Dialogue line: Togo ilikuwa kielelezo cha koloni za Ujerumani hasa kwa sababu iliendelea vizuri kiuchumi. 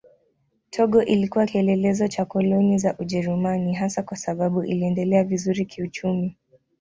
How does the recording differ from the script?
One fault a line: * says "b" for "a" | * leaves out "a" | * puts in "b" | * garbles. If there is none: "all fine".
all fine